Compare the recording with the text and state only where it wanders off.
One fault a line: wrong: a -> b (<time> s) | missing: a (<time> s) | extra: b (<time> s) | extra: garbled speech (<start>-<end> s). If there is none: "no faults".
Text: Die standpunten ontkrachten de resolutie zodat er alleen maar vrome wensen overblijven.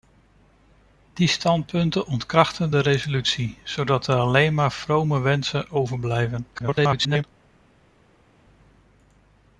extra: garbled speech (6.5-7.2 s)